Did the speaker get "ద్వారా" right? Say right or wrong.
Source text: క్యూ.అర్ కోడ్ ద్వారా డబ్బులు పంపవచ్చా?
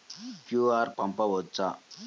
wrong